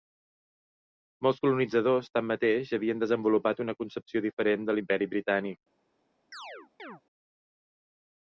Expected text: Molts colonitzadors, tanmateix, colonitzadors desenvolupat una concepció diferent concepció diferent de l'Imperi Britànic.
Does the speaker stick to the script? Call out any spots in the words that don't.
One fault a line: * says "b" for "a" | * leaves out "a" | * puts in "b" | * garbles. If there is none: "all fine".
* says "havien" for "colonitzadors"
* leaves out "concepció diferent"